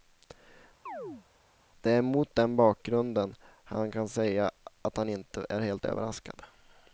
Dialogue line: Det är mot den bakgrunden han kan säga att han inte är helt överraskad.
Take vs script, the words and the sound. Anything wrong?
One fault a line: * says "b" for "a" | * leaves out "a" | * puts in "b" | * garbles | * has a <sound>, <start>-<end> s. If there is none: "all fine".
* has a chirp, 0.9-1.3 s